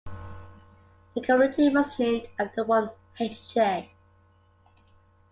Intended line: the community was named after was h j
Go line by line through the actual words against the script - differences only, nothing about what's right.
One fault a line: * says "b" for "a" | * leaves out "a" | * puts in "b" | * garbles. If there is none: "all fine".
* says "one" for "was"